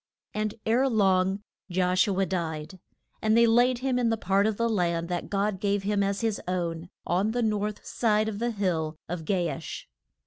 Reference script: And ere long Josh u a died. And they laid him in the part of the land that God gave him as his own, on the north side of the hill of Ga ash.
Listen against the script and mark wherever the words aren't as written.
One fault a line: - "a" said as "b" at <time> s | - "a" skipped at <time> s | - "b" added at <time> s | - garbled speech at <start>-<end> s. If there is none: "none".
none